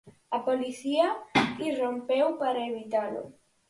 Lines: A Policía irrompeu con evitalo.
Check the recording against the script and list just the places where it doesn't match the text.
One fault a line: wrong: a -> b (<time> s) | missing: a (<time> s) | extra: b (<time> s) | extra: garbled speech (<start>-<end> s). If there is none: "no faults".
wrong: con -> para (2.4 s)